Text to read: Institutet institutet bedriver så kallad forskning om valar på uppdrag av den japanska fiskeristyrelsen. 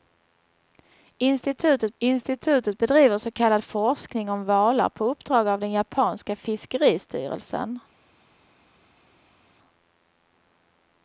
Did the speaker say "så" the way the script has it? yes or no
yes